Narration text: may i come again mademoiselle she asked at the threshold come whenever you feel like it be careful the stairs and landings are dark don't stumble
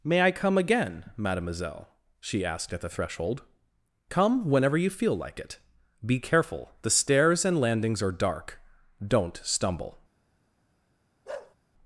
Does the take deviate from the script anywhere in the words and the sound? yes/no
yes